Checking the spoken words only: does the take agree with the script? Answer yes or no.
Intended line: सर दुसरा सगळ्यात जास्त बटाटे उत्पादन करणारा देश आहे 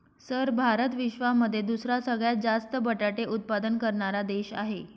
no